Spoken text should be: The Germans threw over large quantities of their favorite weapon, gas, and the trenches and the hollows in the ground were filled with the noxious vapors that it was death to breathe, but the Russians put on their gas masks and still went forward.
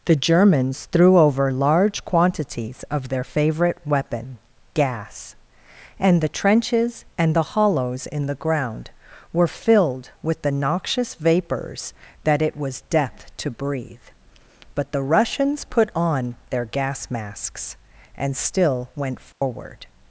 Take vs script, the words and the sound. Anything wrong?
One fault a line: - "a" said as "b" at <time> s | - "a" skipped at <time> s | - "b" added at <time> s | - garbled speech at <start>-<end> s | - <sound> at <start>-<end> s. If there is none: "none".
- dropout at 19.3-19.4 s